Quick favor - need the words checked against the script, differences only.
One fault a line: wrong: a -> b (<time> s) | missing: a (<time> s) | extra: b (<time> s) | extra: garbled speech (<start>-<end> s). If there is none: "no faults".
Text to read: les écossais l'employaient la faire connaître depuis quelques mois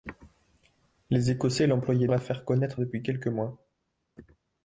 no faults